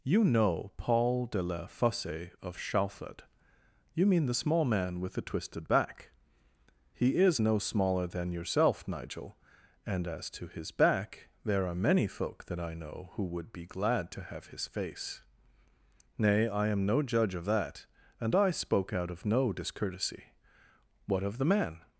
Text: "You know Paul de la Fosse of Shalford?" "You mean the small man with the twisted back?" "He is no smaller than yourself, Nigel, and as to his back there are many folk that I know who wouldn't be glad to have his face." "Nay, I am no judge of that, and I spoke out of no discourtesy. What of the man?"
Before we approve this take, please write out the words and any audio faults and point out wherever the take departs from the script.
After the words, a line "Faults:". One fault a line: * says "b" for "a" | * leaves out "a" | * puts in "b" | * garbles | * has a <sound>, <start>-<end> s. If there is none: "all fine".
"You know Paul de la Fosse of Shalford?" "You mean the small man with the twisted back?" "He is no smaller than yourself, Nigel, and as to his back there are many folk that I know who would be glad to have his face." "Nay, I am no judge of that, and I spoke out of no discourtesy. What of the man?"
Faults:
* says "would" for "wouldn't"